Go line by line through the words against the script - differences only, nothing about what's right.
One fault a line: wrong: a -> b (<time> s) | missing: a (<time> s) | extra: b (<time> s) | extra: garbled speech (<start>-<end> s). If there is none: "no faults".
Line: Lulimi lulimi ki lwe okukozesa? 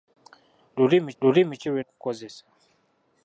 no faults